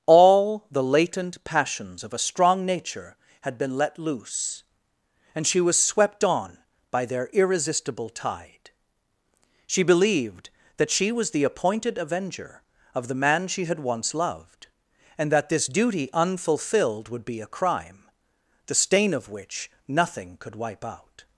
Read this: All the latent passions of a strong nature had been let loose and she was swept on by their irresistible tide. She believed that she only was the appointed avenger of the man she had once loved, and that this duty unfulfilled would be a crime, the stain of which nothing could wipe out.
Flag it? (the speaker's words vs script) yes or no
yes